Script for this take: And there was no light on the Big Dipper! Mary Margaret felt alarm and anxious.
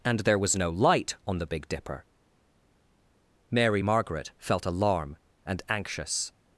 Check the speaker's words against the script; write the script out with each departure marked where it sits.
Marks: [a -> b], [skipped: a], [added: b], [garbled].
And there was no light on the Big Dipper! Mary Margaret felt alarm and anxious.